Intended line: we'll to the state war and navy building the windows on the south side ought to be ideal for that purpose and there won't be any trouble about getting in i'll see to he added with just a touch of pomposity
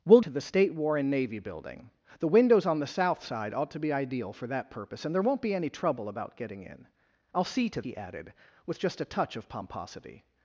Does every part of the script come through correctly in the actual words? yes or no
yes